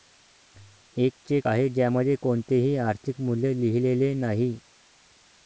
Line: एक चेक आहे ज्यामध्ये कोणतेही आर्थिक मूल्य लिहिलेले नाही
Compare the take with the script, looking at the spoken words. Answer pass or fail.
pass